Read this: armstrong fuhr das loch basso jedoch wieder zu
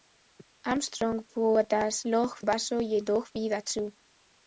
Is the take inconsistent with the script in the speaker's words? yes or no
no